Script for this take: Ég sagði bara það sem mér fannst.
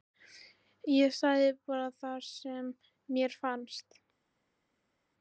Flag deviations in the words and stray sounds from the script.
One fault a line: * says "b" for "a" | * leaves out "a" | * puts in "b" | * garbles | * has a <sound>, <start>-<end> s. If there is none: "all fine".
all fine